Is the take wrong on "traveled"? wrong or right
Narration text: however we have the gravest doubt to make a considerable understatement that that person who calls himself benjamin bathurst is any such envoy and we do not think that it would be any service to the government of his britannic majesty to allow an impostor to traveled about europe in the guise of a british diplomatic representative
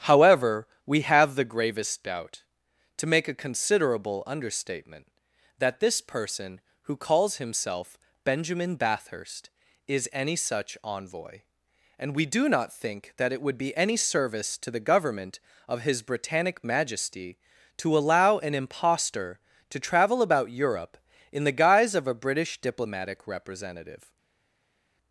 wrong